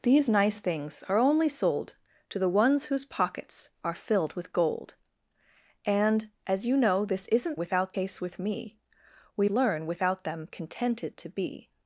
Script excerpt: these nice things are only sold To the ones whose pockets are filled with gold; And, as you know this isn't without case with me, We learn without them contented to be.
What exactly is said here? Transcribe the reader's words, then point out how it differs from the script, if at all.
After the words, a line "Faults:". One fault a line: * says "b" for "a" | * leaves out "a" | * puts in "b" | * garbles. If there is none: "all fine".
these nice things are only sold To the ones whose pockets are filled with gold; And, as you know this isn't without case with me, We learn without them contented to be.
Faults:
all fine